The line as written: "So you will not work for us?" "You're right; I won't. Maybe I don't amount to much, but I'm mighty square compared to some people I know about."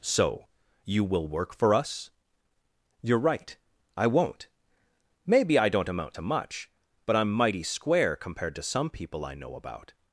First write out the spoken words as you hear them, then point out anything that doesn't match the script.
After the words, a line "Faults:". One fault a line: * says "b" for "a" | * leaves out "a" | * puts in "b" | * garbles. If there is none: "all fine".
"So you will work for us?" "You're right; I won't. Maybe I don't amount to much, but I'm mighty square compared to some people I know about."
Faults:
* leaves out "not"